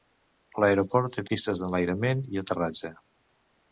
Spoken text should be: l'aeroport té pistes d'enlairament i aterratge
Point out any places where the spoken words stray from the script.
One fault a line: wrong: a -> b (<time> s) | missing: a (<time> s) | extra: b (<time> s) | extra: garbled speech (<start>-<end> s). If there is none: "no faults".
no faults